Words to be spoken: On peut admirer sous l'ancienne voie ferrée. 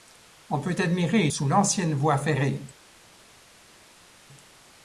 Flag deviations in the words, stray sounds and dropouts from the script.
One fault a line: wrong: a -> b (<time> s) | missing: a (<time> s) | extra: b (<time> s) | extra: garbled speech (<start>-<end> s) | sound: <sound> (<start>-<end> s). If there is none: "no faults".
no faults